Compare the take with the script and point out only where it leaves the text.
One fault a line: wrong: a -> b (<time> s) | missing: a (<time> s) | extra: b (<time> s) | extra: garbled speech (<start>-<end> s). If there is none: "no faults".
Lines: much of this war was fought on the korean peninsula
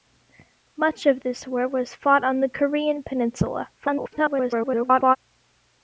extra: garbled speech (3.8-5.2 s)